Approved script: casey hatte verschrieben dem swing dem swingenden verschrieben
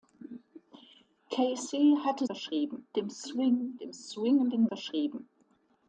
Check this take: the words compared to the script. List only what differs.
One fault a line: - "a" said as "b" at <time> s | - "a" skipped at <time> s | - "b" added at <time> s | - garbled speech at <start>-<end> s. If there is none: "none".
none